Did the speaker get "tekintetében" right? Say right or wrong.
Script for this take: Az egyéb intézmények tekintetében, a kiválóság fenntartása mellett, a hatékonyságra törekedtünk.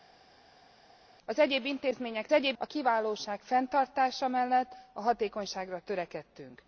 wrong